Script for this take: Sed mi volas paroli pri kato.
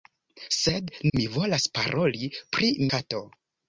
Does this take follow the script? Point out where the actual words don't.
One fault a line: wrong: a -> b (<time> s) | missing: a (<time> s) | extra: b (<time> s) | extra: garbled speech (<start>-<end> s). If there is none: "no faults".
no faults